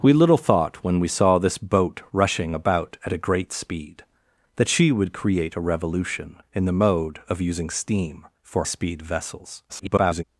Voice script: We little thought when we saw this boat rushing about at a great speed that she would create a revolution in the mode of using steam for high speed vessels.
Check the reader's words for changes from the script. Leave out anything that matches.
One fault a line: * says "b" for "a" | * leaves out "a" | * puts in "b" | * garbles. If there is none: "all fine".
* leaves out "high"
* garbles